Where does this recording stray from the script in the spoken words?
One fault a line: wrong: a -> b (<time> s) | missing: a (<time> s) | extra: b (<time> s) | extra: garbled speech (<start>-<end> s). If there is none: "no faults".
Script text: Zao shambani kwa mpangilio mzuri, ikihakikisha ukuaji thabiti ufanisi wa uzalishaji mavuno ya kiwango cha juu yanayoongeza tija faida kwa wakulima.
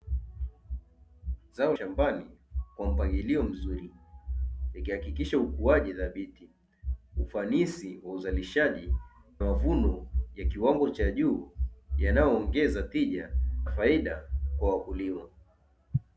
no faults